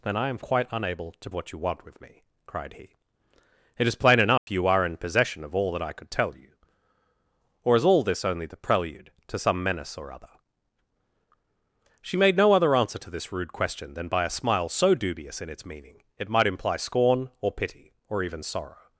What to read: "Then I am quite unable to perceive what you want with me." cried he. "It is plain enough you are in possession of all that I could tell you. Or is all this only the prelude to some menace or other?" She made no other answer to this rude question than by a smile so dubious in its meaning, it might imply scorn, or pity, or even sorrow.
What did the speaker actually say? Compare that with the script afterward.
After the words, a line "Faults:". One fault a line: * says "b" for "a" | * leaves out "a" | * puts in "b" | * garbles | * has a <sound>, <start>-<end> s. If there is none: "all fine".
"Then I am quite unable to what you want with me." cried he. "It is plain enough you are in possession of all that I could tell you. Or is all this only the prelude to some menace or other?" She made no other answer to this rude question than by a smile so dubious in its meaning, it might imply scorn, or pity, or even sorrow.
Faults:
* leaves out "perceive"
* has a dropout, 4.4-4.5 s